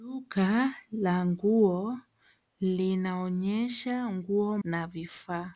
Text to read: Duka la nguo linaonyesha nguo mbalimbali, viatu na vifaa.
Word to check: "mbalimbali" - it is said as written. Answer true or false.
false